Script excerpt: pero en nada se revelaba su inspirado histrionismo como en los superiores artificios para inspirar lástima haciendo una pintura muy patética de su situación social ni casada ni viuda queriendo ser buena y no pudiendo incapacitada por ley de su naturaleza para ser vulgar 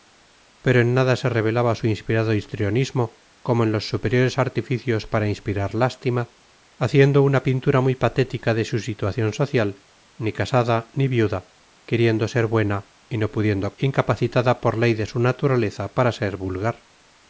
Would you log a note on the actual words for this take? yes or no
no